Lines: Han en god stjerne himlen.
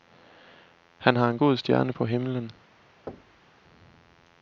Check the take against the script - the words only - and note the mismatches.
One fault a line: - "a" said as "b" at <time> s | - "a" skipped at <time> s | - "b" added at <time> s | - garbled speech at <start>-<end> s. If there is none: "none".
- "har" added at 1.1 s
- "på" added at 1.9 s